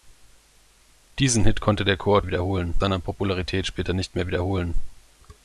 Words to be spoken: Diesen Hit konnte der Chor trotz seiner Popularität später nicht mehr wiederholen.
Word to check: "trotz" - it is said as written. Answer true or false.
false